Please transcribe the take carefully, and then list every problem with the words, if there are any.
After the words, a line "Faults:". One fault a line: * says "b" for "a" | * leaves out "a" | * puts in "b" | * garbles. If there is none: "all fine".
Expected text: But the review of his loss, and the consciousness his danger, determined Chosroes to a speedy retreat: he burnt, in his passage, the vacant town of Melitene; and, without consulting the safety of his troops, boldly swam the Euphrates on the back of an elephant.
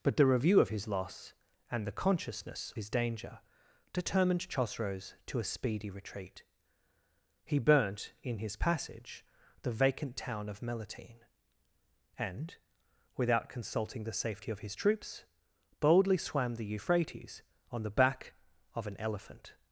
But the review of his loss, and the consciousness his danger, determined Chosroes to a speedy retreat: he burnt, in his passage, the vacant town of Melitene; and, without consulting the safety of his troops, boldly swam the Euphrates on the back of an elephant.
Faults:
all fine